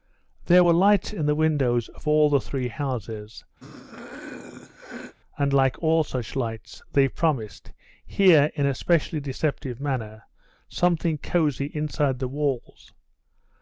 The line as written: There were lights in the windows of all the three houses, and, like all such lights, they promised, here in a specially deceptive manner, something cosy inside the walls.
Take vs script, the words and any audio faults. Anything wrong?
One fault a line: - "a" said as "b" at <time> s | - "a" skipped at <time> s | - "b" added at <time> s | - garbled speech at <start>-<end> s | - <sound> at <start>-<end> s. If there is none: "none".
- throat clearing at 3.6-5.1 s